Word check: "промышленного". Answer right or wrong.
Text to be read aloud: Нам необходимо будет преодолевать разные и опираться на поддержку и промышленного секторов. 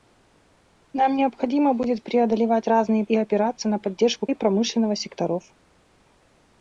right